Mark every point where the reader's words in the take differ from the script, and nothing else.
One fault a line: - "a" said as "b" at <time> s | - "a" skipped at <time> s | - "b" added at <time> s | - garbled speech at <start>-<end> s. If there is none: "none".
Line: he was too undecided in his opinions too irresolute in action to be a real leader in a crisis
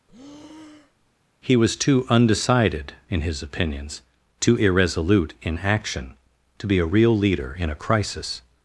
none